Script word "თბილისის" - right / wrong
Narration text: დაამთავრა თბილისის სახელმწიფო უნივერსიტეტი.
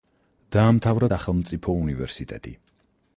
wrong